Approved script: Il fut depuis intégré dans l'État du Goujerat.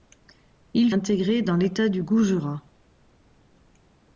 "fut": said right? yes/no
no